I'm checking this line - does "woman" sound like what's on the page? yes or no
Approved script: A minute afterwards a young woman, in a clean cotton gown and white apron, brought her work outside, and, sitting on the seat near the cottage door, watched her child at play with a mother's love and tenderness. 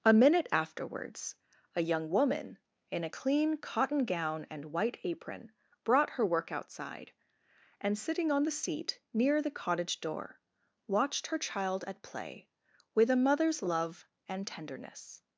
yes